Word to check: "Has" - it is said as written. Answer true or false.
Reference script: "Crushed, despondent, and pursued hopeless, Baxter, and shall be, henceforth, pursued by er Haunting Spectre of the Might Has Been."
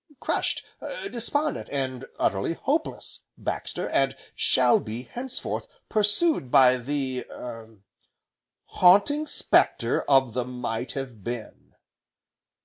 false